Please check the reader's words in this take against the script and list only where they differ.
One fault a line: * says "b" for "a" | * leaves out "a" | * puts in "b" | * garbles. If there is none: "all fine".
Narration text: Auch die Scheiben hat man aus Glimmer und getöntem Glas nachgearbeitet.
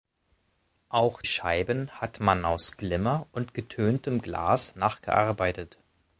* leaves out "die"